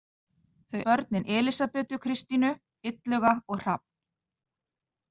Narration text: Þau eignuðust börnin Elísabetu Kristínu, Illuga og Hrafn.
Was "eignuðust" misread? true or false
true